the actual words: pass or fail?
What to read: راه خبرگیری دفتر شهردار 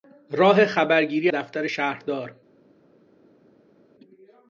pass